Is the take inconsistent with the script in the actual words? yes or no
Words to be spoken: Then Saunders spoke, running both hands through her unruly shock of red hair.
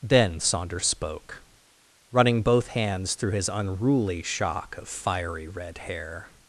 yes